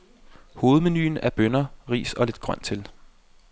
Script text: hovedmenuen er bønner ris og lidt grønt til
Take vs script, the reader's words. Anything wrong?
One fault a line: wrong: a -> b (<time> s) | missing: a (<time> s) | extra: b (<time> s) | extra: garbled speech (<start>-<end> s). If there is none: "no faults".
no faults